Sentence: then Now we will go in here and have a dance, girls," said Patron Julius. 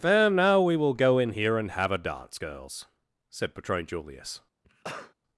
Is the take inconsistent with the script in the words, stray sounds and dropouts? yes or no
yes